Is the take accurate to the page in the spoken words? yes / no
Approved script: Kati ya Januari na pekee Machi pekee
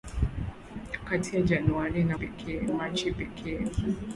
yes